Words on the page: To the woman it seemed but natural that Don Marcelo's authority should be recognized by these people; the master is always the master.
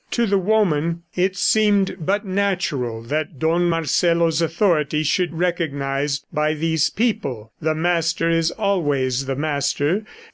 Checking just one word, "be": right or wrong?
wrong